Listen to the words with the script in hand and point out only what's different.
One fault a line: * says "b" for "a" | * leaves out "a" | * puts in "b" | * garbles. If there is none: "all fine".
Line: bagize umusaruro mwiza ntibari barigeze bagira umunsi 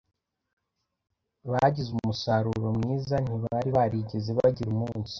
all fine